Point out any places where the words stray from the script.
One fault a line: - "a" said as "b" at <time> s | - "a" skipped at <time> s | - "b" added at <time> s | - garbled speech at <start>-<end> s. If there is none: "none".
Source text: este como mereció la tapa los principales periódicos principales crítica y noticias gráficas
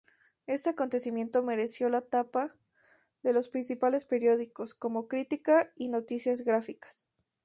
- "como" said as "acontecimiento" at 0.7 s
- "de" added at 3.2 s
- "principales" said as "como" at 4.7 s